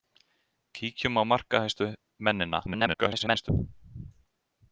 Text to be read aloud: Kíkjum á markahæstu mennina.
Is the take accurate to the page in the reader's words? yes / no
no